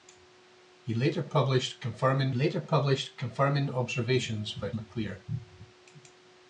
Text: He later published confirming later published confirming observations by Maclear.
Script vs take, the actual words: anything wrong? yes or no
no